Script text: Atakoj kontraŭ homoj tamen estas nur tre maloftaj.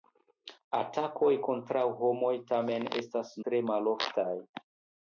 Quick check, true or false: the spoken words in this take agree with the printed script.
false